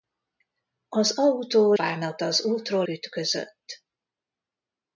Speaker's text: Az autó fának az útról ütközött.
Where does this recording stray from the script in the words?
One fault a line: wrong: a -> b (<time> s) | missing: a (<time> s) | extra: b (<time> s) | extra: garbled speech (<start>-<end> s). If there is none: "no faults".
no faults